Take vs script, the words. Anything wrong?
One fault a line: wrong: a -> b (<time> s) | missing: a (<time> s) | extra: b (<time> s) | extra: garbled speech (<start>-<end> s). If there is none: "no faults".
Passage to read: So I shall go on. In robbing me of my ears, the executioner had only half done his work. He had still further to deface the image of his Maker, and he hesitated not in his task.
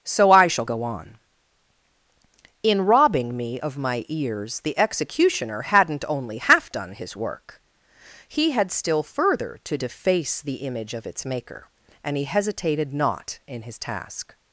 wrong: had -> hadn't (5.6 s)
wrong: his -> its (11.1 s)